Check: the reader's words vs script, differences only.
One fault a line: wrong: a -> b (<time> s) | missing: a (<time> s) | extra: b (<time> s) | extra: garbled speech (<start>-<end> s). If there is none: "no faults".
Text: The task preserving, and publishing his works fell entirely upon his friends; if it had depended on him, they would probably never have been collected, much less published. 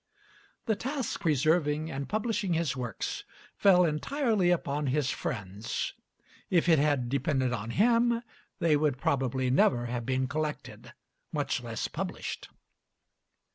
no faults